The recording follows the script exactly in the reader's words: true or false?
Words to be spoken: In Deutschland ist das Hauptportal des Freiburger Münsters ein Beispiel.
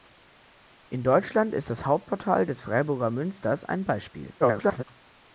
false